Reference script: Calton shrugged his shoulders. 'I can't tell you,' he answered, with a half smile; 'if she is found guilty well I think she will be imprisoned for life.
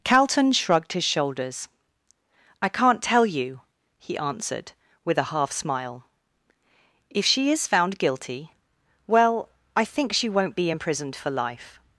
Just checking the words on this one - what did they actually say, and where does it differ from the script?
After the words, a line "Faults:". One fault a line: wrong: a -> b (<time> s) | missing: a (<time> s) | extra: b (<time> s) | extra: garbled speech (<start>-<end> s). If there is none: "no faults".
Calton shrugged his shoulders. 'I can't tell you,' he answered, with a half smile; 'if she is found guilty well I think she won't be imprisoned for life.
Faults:
wrong: will -> won't (10.3 s)